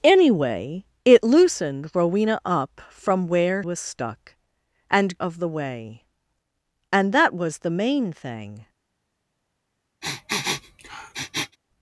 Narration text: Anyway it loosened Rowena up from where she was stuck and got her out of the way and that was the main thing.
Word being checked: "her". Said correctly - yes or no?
no